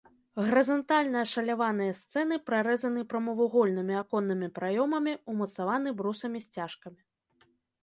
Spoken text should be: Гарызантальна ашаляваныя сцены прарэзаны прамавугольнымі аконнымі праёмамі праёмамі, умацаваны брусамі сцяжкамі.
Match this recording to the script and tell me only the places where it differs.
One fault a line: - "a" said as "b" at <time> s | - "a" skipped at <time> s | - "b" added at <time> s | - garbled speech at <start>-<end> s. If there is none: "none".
- "праёмамі" skipped at 5.1 s